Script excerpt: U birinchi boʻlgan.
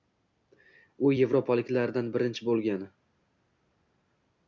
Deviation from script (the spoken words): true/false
true